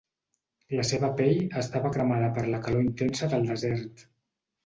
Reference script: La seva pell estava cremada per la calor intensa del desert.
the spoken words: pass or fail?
pass